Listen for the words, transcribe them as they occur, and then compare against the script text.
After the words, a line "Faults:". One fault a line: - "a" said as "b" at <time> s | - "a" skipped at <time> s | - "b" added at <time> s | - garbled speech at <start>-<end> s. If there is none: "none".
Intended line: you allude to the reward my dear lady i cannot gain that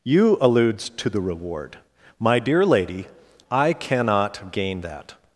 you alludes to the reward my dear lady i cannot gain that
Faults:
- "allude" said as "alludes" at 0.4 s